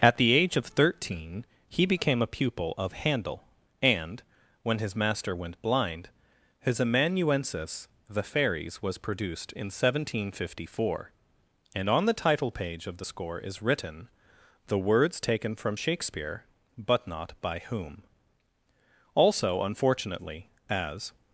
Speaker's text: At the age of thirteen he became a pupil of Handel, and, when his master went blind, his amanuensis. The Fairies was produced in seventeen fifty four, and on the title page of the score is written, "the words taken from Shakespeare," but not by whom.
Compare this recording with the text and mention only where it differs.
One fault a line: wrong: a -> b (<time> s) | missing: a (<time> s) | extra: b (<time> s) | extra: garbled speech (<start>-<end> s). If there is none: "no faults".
extra: Also unfortunately as (19.1 s)